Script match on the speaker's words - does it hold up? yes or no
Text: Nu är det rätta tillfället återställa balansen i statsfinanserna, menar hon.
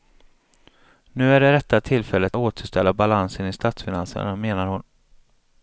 yes